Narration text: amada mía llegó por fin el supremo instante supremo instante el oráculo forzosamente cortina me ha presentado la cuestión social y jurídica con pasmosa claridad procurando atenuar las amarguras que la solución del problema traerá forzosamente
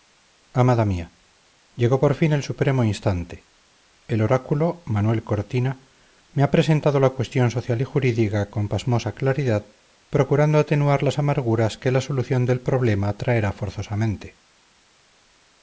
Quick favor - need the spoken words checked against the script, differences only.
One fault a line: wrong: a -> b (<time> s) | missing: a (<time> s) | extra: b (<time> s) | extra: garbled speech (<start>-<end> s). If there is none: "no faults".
missing: supremo instante (3.5 s)
wrong: forzosamente -> manuel (4.9 s)